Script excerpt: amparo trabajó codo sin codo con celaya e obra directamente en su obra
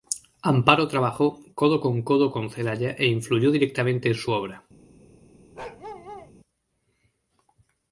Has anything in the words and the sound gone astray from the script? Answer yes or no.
yes